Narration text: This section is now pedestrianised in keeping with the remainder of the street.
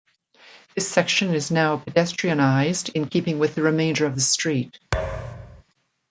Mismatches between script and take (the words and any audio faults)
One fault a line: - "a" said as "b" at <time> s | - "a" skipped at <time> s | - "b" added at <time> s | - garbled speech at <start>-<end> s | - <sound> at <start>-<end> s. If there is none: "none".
- thud at 4.9-5.6 s